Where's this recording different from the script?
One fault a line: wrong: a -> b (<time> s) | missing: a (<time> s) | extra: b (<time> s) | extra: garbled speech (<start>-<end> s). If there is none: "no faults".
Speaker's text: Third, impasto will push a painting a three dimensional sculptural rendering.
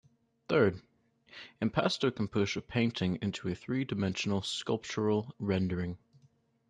wrong: will -> can (2.1 s)
extra: into (3.2 s)